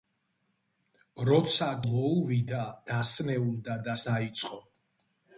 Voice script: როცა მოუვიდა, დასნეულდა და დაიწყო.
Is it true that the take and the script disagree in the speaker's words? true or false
false